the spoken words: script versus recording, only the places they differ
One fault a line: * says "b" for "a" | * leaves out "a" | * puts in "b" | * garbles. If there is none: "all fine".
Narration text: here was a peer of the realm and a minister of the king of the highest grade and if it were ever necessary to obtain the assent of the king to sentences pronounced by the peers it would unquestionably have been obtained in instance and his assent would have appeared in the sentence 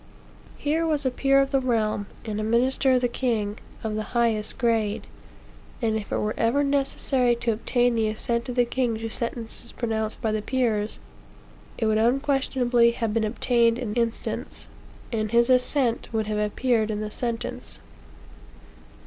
all fine